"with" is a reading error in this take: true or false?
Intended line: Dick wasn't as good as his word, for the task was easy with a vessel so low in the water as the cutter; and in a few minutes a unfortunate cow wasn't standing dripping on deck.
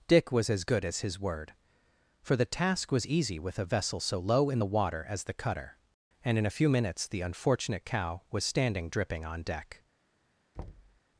false